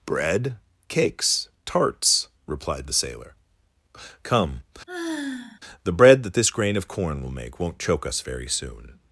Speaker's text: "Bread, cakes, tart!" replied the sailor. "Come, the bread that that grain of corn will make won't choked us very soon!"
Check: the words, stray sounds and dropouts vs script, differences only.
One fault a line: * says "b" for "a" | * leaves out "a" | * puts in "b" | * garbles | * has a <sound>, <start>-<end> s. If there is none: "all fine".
* says "tarts" for "tart"
* has a sigh, 4.9-5.6 s
* says "this" for "that"
* says "choke" for "choked"